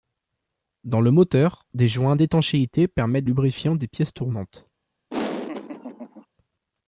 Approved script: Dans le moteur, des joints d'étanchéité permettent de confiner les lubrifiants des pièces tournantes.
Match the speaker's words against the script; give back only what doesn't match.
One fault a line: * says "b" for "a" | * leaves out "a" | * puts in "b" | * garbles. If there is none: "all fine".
* leaves out "de confiner les"